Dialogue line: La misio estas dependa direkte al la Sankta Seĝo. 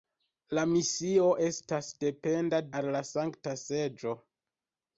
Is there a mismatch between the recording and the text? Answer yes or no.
yes